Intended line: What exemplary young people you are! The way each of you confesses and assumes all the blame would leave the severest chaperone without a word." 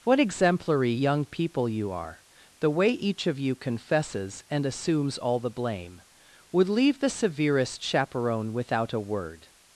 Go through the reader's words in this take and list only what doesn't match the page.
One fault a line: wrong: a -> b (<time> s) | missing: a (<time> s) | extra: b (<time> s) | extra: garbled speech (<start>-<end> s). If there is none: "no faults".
no faults